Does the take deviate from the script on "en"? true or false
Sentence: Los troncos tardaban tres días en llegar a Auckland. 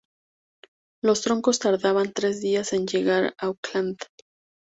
false